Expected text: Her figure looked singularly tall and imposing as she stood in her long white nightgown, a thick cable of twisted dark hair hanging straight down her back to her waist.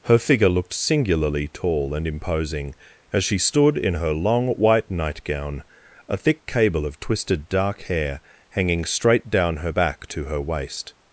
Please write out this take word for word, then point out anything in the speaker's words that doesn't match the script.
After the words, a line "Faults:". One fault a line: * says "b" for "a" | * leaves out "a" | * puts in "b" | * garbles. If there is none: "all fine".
Her figure looked singularly tall and imposing as she stood in her long white nightgown, a thick cable of twisted dark hair hanging straight down her back to her waist.
Faults:
all fine